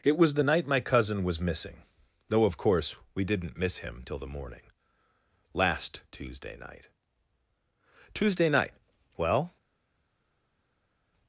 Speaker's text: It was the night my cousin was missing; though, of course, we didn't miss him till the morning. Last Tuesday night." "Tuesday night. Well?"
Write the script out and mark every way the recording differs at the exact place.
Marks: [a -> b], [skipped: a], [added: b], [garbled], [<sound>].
It was the night my cousin was missing; though, of course, we didn't miss him till the morning. Last Tuesday night." "Tuesday night. Well?"